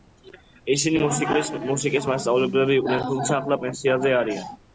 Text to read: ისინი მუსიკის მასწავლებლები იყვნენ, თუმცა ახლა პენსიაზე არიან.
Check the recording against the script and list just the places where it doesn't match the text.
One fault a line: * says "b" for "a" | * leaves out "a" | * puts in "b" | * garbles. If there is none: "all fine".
all fine